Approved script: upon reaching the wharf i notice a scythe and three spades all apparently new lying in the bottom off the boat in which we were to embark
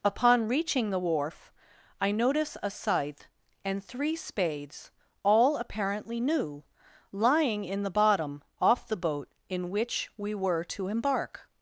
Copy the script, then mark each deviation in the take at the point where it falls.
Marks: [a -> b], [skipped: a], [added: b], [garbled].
upon reaching the wharf i notice a scythe and three spades all apparently new lying in the bottom off the boat in which we were to embark